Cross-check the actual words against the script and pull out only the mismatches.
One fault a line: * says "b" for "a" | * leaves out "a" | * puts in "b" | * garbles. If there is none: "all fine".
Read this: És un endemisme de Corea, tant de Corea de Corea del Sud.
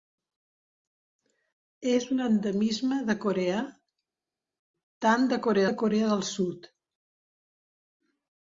all fine